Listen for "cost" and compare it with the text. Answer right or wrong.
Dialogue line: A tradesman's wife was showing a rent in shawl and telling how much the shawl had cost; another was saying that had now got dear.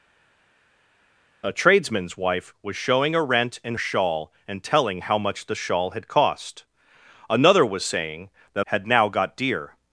right